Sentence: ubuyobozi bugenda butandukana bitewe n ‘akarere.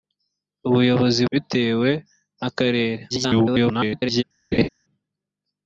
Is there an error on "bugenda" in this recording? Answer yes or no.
yes